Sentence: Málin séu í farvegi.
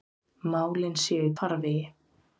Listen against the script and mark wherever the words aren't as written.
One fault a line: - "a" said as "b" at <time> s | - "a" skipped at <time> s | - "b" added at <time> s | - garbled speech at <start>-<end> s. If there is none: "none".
none